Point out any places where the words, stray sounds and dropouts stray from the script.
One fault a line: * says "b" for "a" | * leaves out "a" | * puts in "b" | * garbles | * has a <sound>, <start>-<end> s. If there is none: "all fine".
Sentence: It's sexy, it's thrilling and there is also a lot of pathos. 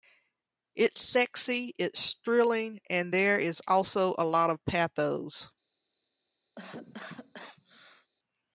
* has a cough, 6.6-8.1 s